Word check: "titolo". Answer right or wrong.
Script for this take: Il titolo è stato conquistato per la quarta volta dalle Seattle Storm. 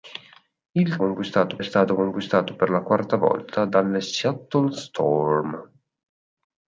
wrong